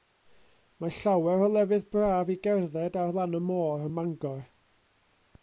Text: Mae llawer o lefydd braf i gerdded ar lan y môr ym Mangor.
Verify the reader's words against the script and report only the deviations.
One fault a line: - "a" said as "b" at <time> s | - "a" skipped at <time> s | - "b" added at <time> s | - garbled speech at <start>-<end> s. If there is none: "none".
none